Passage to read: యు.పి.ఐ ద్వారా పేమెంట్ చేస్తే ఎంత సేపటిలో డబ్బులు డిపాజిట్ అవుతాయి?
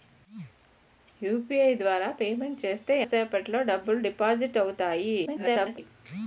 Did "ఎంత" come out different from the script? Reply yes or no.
yes